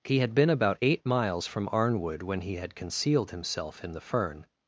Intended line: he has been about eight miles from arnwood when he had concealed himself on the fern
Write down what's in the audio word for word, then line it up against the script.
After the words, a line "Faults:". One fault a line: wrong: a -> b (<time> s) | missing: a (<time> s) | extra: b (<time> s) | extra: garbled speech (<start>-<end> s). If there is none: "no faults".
he had been about eight miles from arnwood when he had concealed himself in the fern
Faults:
wrong: has -> had (0.2 s)
wrong: on -> in (3.8 s)